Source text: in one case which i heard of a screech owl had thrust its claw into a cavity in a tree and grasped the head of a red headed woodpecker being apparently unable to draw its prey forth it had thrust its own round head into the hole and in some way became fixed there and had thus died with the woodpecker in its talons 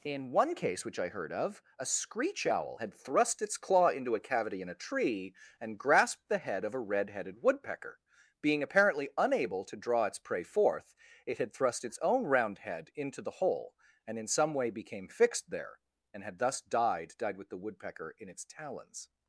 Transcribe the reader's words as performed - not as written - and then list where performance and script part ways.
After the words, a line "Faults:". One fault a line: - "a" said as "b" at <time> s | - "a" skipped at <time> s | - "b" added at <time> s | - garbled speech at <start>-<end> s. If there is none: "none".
in one case which i heard of a screech owl had thrust its claw into a cavity in a tree and grasped the head of a red headed woodpecker being apparently unable to draw its prey forth it had thrust its own round head into the hole and in some way became fixed there and had thus died died with the woodpecker in its talons
Faults:
- "died" added at 17.2 s